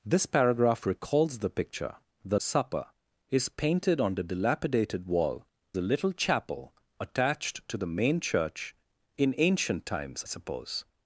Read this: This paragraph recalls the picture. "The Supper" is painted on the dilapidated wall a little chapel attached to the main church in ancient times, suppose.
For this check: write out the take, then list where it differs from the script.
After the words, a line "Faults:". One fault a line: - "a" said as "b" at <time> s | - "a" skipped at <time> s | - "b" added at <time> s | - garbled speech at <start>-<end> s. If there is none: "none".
This paragraph recalls the picture. "The Supper" is painted on the dilapidated wall a little chapel attached to the main church in ancient times, suppose.
Faults:
none